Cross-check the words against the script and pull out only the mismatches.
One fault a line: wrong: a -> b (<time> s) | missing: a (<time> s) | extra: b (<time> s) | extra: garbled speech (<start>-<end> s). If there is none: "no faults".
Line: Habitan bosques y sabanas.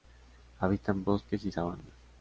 no faults